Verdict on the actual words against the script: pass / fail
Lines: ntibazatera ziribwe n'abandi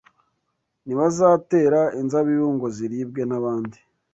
fail